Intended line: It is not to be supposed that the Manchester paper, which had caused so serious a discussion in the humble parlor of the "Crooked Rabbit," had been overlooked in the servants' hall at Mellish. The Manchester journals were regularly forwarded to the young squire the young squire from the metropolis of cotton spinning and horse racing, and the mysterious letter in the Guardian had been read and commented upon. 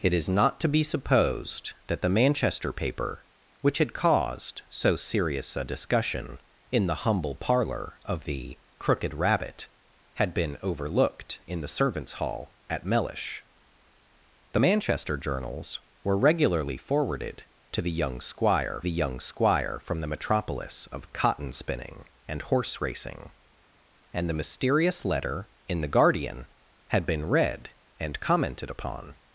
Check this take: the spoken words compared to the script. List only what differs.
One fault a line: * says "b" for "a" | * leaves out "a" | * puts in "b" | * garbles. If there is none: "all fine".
all fine